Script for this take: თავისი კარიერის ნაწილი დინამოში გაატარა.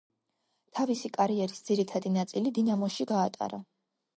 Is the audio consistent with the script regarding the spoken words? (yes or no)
no